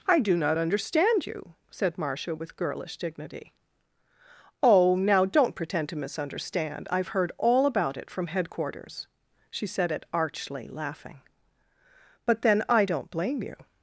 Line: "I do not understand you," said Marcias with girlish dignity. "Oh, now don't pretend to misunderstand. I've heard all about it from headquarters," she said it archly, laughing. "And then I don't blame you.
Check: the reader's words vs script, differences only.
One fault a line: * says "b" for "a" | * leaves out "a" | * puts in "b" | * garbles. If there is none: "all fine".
* says "Marcia" for "Marcias"
* says "But" for "And"